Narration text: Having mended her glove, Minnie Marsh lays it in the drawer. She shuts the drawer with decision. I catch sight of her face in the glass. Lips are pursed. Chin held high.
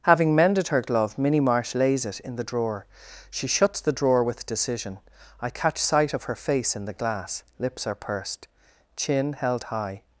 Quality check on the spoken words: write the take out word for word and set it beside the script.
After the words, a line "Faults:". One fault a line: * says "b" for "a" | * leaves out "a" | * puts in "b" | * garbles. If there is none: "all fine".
Having mended her glove, Minnie Marsh lays it in the drawer. She shuts the drawer with decision. I catch sight of her face in the glass. Lips are pursed. Chin held high.
Faults:
all fine